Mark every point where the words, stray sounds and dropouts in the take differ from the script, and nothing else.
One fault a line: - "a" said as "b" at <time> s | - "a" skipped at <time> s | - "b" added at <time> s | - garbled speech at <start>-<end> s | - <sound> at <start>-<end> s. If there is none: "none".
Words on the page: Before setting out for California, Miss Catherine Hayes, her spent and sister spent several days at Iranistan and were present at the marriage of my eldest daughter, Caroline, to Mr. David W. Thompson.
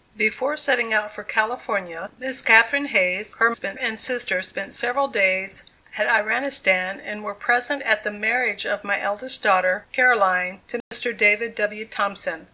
- dropout at 10.8-10.9 s